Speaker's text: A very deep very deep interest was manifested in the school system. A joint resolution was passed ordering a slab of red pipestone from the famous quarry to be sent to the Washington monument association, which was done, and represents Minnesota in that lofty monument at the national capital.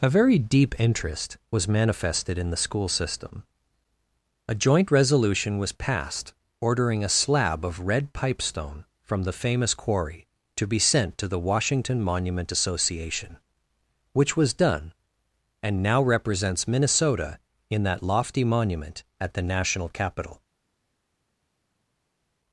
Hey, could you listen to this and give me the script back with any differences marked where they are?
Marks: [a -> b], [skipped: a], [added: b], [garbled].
A very deep [skipped: very deep] interest was manifested in the school system. A joint resolution was passed ordering a slab of red pipestone from the famous quarry to be sent to the Washington monument association, which was done, and [added: now] represents Minnesota in that lofty monument at the national capital.